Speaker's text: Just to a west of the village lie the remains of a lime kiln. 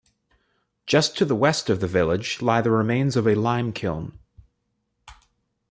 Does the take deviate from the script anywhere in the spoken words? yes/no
yes